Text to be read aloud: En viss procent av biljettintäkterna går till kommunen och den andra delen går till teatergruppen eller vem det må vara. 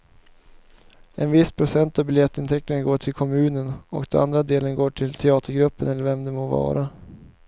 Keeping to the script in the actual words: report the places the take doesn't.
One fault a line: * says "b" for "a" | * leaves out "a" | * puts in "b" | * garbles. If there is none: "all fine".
all fine